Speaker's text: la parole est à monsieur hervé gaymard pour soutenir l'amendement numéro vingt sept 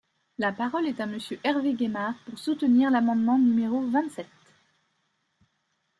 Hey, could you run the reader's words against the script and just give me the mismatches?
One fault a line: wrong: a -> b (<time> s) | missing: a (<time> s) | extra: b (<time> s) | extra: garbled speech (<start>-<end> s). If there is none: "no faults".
no faults